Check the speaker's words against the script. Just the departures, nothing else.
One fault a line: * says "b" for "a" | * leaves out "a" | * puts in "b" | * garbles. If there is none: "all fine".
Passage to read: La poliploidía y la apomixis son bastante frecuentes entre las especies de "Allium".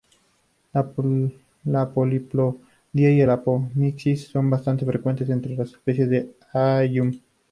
all fine